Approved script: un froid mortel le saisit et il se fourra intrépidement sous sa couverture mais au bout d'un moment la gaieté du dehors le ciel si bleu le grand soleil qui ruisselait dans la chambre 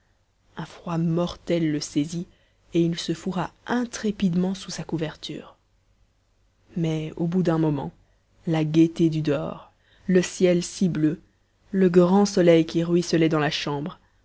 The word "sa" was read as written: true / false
true